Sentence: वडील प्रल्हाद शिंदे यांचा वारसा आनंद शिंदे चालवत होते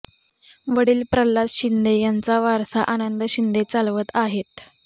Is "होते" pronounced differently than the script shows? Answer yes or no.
yes